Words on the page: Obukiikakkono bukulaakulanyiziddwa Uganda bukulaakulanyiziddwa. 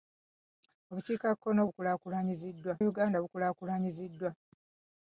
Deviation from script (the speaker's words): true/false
false